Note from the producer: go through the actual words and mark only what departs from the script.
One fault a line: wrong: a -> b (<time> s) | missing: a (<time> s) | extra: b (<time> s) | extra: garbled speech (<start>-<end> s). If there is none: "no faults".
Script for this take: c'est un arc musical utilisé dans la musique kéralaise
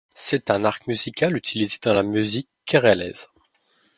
no faults